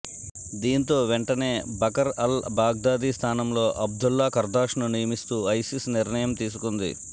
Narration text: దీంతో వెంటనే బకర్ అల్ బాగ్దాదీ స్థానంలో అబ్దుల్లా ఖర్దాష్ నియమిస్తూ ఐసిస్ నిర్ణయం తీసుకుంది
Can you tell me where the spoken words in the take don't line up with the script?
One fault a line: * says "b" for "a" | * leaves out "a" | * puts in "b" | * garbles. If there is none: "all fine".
* puts in "ను"